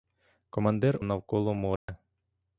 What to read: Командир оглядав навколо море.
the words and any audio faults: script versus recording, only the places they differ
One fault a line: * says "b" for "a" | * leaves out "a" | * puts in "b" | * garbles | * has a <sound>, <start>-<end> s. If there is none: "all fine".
* leaves out "оглядав"
* has a dropout, 1.8-1.9 s